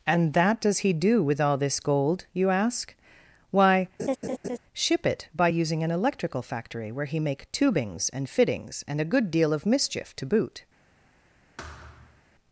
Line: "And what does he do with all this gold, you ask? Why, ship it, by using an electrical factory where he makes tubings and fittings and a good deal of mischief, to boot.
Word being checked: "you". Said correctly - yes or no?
yes